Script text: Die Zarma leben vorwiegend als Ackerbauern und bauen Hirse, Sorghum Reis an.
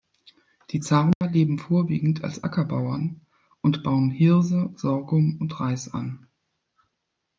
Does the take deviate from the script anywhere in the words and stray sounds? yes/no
yes